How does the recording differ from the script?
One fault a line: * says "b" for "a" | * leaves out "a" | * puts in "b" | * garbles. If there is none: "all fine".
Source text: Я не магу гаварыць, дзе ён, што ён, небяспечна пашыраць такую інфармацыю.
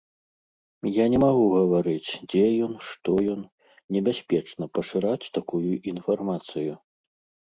all fine